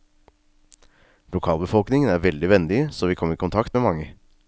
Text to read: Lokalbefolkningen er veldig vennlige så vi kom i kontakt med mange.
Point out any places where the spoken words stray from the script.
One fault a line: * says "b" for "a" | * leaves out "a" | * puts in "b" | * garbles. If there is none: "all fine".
all fine